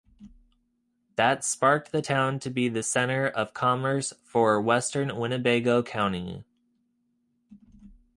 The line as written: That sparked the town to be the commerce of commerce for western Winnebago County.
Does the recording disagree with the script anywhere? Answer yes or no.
yes